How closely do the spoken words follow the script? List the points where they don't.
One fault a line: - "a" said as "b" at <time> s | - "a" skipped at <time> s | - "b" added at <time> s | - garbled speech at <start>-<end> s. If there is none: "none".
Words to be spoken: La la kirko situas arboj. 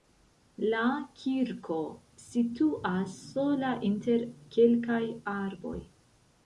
- "la" skipped at 0.8 s
- "sola inter kelkaj" added at 3.3 s